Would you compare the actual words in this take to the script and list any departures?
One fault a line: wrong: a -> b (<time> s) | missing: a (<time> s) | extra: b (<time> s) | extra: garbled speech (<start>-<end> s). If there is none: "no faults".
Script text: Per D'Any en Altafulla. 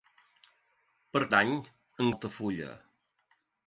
no faults